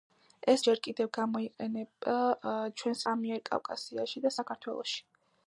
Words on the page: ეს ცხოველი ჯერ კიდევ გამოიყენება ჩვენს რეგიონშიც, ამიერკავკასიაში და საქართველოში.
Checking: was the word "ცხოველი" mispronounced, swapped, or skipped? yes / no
yes